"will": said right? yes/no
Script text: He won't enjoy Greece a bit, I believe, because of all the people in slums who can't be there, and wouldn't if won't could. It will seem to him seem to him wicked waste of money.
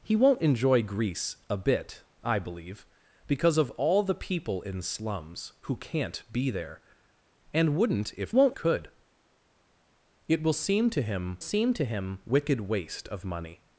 yes